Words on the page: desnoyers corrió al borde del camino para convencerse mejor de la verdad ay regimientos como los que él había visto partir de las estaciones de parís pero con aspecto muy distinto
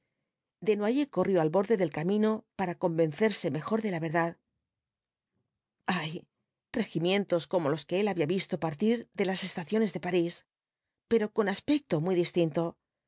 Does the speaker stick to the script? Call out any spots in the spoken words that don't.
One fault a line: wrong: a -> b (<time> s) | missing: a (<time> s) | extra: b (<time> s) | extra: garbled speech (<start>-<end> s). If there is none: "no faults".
no faults